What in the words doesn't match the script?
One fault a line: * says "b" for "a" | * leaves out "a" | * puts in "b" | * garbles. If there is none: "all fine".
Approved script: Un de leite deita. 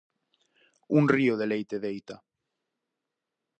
* puts in "río"